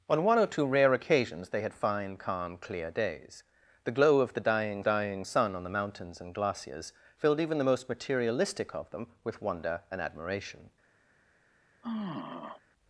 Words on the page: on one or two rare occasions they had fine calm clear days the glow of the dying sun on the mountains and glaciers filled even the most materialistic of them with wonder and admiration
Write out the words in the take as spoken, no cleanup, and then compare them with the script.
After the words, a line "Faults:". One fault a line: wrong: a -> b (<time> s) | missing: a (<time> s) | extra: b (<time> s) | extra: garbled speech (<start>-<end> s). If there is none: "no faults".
on one or two rare occasions they had fine calm clear days the glow of the dying dying sun on the mountains and glaciers filled even the most materialistic of them with wonder and admiration
Faults:
extra: dying (4.8 s)